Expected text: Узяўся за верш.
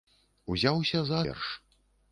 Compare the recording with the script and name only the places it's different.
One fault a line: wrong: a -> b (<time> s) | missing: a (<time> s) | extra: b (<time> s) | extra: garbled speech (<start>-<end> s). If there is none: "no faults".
no faults